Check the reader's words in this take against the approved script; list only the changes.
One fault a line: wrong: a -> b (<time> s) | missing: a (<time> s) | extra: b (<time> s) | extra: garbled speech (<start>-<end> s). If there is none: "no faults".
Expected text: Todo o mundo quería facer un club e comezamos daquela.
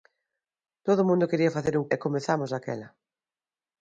missing: club (1.9 s)